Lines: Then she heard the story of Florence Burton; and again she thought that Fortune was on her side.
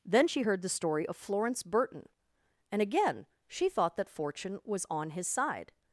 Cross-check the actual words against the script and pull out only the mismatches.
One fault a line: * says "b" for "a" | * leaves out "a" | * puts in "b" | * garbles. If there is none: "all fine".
* says "his" for "her"